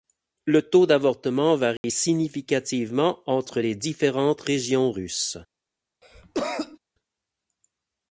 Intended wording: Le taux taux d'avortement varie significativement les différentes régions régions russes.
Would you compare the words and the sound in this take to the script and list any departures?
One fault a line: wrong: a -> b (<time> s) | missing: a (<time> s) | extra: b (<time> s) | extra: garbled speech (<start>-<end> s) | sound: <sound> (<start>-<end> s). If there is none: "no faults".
missing: taux (0.9 s)
sound: dropout (1.8-1.8 s)
extra: entre (3.3 s)
missing: régions (4.9 s)
sound: cough (6.0-6.8 s)